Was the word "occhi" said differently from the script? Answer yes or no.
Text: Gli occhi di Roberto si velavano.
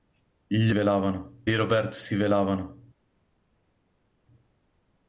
yes